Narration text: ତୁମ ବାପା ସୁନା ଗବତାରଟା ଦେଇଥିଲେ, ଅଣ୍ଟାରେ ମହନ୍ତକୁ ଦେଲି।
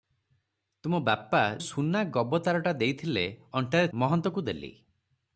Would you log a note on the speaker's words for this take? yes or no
no